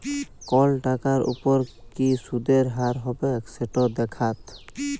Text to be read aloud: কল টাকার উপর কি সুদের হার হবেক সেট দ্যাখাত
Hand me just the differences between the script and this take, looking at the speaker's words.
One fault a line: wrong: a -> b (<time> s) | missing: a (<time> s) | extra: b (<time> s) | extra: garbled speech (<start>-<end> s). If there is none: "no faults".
no faults